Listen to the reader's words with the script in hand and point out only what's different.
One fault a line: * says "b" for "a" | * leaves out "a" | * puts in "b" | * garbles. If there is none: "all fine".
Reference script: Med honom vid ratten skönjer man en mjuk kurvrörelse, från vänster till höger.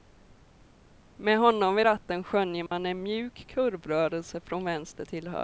all fine